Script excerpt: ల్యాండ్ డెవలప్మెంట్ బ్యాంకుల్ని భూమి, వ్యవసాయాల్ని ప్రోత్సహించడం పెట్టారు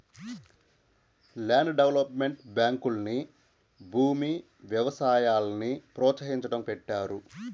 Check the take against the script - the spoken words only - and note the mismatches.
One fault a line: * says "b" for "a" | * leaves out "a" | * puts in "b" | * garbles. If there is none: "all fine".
all fine